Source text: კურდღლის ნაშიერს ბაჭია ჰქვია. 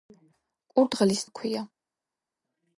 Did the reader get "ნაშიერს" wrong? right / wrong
wrong